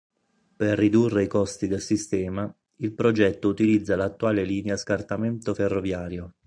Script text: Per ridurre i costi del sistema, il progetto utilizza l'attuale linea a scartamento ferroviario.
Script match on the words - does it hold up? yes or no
yes